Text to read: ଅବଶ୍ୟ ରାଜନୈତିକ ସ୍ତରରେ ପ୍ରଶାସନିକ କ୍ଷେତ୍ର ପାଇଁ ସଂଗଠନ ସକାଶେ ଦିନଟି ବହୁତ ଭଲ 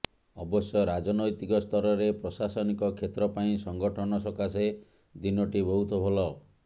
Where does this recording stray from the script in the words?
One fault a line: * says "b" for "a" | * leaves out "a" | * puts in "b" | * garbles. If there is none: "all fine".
all fine